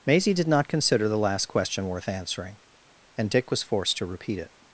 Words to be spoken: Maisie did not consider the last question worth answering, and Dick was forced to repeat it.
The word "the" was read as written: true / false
true